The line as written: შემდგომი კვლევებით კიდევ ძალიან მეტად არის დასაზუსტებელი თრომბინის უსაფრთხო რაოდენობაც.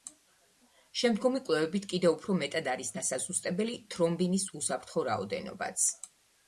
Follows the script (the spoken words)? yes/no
no